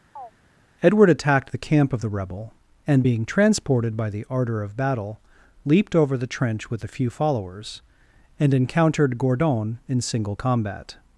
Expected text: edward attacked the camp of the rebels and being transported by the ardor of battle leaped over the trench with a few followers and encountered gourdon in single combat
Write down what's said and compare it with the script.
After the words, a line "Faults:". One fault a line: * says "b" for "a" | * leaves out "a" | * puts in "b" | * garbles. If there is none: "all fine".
edward attacked the camp of the rebel and being transported by the ardor of battle leaped over the trench with a few followers and encountered gourdon in single combat
Faults:
* says "rebel" for "rebels"